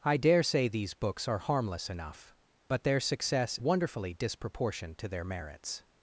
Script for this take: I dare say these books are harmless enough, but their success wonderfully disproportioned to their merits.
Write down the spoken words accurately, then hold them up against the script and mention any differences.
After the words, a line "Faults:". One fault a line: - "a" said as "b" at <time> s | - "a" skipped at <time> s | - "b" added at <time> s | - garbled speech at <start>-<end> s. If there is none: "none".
I dare say these books are harmless enough, but their success wonderfully disproportioned to their merits.
Faults:
none